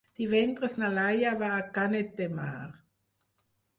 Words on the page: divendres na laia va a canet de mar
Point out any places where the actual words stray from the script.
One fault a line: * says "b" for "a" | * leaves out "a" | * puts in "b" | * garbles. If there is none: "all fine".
all fine